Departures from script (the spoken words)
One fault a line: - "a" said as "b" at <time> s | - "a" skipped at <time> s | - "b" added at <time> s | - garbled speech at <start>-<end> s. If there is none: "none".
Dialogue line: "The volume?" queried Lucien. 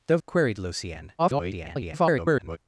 - "volume" skipped at 0.2 s
- garbled speech at 1.2-2.6 s